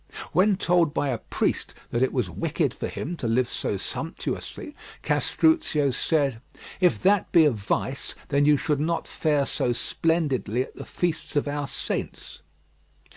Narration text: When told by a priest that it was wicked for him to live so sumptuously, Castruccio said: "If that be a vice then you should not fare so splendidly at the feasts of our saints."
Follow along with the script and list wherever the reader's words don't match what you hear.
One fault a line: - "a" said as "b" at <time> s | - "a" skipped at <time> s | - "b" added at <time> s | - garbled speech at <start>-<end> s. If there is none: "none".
none